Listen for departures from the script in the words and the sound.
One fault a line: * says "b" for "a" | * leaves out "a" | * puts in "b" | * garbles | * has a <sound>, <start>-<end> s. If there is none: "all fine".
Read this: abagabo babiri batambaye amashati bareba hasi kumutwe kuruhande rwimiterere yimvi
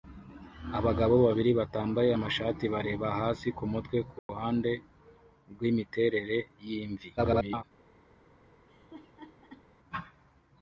* has a dropout, 4.2-4.3 s
* garbles
* has a laugh, 8.7-9.7 s